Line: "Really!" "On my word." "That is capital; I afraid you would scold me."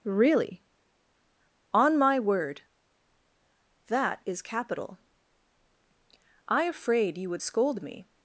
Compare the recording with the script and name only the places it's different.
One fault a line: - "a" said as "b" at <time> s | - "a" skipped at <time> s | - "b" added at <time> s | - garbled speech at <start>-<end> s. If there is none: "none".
none